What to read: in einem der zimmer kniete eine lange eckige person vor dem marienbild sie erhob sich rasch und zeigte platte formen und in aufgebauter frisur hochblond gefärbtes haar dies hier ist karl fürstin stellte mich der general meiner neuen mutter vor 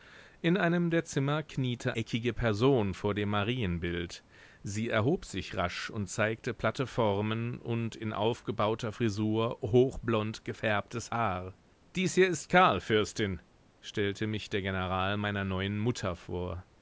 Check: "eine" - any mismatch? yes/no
yes